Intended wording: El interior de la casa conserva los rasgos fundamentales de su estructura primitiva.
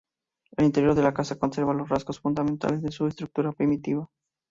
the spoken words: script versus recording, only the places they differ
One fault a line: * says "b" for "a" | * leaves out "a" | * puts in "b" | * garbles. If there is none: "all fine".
all fine